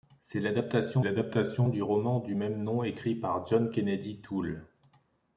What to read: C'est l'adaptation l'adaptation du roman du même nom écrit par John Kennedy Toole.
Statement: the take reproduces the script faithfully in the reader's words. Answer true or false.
true